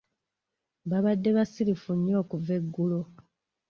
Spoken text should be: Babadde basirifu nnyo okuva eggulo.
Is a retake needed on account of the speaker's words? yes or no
no